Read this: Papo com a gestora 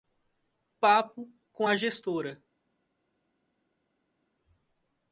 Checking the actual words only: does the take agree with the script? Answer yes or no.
yes